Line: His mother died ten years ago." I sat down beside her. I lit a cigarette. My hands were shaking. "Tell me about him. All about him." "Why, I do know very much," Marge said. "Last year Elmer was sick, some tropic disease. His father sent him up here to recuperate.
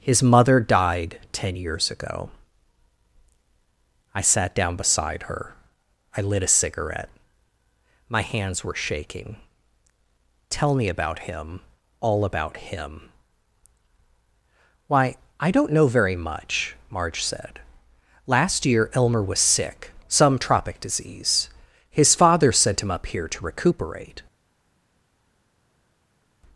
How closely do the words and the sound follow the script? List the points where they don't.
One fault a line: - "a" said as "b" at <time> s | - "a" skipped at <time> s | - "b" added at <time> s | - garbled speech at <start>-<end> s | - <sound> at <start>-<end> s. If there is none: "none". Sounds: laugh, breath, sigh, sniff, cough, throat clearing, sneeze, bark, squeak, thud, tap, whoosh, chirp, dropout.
- "do" said as "don't" at 15.5 s